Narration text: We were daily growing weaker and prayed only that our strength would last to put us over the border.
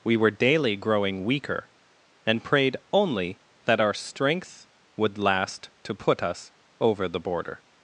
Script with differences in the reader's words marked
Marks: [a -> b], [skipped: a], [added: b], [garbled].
We were daily growing weaker and prayed only that our strength would last to put us over the border.